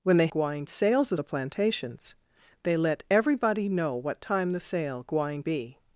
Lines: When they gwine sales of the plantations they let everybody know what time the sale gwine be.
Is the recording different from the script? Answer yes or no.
no